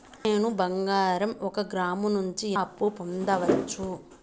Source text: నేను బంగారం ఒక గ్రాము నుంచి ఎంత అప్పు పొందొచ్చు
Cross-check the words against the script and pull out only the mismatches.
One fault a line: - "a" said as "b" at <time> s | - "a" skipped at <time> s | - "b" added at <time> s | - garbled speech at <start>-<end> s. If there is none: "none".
- "ఎంత" skipped at 2.5 s